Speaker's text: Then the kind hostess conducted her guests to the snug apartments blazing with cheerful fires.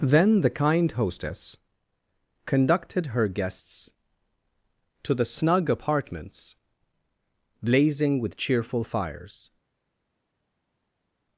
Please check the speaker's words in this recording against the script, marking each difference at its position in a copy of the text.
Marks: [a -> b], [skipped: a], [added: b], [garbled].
Then the kind hostess conducted her guests to the snug apartments blazing with cheerful fires.